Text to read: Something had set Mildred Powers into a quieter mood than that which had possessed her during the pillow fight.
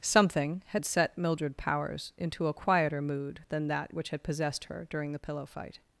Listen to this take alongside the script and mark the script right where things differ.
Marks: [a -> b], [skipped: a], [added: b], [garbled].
Something had set Mildred Powers into a quieter mood than that which had possessed her during the pillow fight.